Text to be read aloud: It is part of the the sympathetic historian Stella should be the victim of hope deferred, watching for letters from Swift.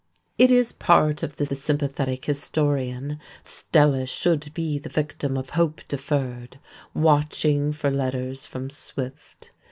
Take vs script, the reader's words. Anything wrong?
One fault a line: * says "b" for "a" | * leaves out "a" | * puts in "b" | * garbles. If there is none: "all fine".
all fine